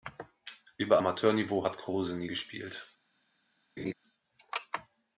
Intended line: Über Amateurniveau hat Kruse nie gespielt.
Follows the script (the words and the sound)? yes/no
no